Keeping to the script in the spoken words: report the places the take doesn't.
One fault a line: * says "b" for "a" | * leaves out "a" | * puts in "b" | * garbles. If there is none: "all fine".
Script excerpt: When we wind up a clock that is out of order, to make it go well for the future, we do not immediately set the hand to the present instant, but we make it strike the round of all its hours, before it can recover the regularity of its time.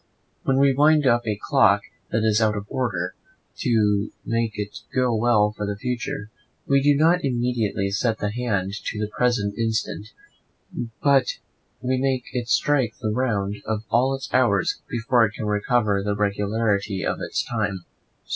all fine